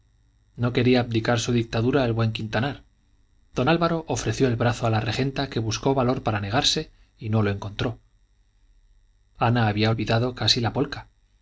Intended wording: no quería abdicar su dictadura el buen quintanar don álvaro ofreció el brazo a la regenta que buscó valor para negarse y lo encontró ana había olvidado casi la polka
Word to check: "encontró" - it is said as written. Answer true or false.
true